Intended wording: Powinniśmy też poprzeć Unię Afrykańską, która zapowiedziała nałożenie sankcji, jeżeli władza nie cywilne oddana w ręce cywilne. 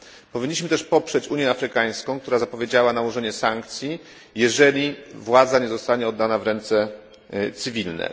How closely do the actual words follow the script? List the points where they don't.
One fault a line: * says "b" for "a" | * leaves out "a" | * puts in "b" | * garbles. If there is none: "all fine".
* says "zostanie" for "cywilne"